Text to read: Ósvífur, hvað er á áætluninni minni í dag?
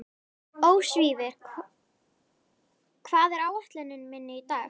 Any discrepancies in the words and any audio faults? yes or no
no